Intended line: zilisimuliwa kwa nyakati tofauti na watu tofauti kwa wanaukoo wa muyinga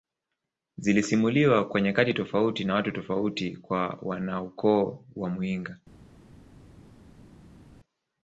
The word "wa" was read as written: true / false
true